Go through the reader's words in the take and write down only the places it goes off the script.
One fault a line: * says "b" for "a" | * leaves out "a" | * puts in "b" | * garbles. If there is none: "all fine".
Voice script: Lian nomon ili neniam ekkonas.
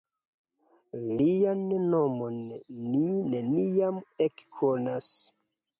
* says "ni" for "ili"